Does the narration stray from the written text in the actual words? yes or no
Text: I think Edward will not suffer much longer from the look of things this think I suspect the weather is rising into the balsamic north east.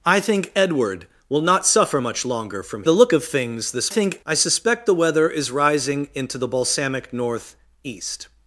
no